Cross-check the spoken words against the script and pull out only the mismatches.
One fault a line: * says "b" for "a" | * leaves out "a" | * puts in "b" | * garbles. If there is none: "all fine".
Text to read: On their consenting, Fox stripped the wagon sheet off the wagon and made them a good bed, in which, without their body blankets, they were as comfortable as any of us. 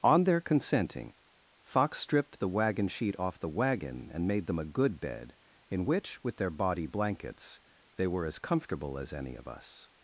* says "with" for "without"